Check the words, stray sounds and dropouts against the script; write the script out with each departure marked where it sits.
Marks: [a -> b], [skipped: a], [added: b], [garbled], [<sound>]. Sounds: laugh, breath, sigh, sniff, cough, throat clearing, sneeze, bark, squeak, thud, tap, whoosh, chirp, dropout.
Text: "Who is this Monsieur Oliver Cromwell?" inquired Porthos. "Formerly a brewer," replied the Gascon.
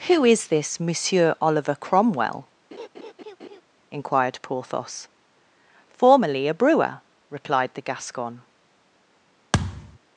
"Who is this Monsieur Oliver Cromwell?" [laugh] inquired Porthos. "Formerly a brewer," replied the Gascon. [thud]